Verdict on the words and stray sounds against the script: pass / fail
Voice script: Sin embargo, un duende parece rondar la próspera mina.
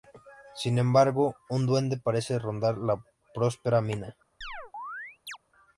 fail